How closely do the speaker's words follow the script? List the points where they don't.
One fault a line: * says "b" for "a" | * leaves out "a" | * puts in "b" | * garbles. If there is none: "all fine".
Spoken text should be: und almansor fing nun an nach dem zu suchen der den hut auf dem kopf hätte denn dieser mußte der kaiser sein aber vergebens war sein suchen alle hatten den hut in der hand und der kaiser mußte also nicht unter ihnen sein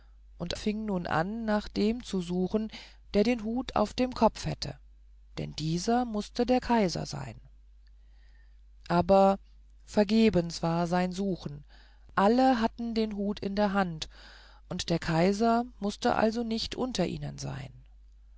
* leaves out "almansor"